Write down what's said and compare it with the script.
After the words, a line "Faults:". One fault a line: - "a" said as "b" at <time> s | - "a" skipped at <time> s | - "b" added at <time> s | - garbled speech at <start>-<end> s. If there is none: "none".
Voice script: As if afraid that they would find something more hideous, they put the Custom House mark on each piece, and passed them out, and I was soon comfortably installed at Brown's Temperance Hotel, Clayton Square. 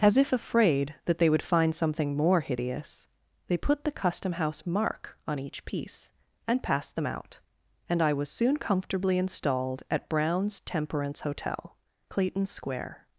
As if afraid that they would find something more hideous, they put the Custom House mark on each piece, and passed them out, and I was soon comfortably installed at Brown's Temperance Hotel, Clayton Square.
Faults:
none